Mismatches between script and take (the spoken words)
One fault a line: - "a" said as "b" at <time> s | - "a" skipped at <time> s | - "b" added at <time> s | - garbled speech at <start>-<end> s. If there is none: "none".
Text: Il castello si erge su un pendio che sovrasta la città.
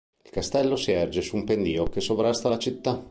none